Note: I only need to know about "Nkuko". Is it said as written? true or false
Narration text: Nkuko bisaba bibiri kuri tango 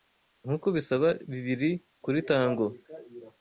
true